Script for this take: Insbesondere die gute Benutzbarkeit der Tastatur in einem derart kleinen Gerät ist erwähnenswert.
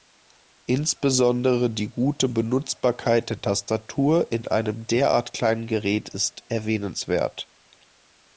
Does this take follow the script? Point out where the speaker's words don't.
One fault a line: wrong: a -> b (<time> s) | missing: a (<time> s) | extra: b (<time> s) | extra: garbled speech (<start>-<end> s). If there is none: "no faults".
no faults